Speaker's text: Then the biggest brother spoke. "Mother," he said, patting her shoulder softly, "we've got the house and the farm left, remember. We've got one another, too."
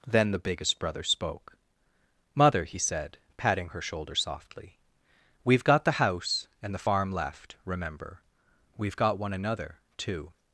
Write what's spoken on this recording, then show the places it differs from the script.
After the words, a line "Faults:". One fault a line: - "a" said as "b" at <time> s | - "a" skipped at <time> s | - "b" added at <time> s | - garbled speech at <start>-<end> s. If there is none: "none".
Then the biggest brother spoke. "Mother," he said, patting her shoulder softly, "we've got the house and the farm left, remember. We've got one another, too."
Faults:
none